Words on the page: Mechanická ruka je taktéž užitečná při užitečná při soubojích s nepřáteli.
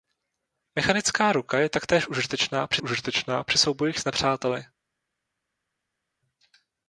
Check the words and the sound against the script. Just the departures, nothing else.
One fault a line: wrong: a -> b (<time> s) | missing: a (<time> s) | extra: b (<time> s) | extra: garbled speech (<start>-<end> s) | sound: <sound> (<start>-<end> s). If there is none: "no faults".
no faults